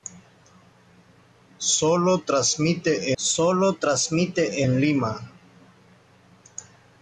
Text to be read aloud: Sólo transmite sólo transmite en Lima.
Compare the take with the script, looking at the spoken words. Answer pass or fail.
pass